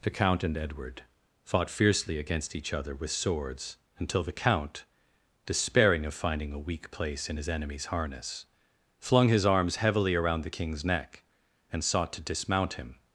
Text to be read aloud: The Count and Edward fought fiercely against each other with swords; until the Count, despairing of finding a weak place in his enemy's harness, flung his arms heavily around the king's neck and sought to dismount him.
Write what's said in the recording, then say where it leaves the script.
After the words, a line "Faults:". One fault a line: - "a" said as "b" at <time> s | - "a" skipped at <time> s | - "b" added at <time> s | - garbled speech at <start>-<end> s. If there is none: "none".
The Count and Edward fought fiercely against each other with swords; until the Count, despairing of finding a weak place in his enemy's harness, flung his arms heavily around the king's neck and sought to dismount him.
Faults:
none